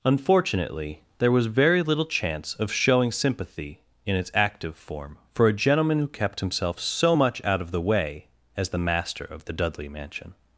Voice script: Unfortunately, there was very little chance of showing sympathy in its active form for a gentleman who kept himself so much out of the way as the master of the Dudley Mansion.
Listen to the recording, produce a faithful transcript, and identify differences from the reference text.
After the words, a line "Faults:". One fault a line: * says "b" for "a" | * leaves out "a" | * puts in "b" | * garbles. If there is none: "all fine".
Unfortunately, there was very little chance of showing sympathy in its active form for a gentleman who kept himself so much out of the way as the master of the Dudley Mansion.
Faults:
all fine